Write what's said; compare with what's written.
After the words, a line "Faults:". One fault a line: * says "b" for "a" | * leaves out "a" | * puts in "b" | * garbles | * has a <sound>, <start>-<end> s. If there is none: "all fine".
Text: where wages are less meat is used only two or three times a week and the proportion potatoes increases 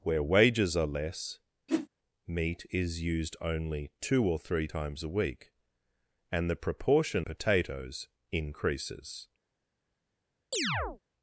where wages are less meat is used only two or three times a week and the proportion potatoes increases
Faults:
* has a whoosh, 1.7-1.9 s
* has a chirp, 10.5-11.0 s